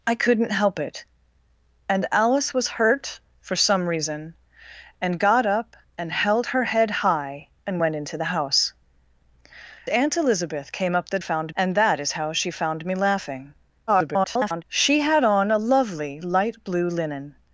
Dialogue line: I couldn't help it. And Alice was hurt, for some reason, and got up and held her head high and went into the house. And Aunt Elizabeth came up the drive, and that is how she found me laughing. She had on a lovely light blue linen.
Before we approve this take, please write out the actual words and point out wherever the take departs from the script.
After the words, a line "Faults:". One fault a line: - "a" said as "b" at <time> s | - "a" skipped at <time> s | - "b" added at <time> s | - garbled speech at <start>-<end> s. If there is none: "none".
I couldn't help it. And Alice was hurt, for some reason, and got up and held her head high and went into the house. Aunt Elizabeth came up the found, and that is how she found me laughing. [garbled] She had on a lovely light blue linen.
Faults:
- "And" skipped at 8.7 s
- "drive" said as "found" at 11.2 s
- garbled speech at 13.9-14.6 s